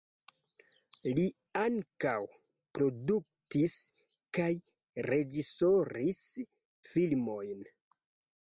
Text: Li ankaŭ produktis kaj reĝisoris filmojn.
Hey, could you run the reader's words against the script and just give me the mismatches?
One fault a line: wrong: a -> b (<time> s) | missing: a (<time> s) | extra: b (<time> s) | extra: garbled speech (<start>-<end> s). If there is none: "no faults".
no faults